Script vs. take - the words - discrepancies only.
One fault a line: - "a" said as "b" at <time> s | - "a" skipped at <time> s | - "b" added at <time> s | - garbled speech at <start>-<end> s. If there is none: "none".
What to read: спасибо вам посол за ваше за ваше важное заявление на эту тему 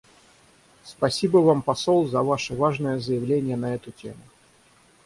- "за ваше" skipped at 2.5 s